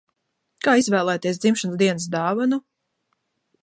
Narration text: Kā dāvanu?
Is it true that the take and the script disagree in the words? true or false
true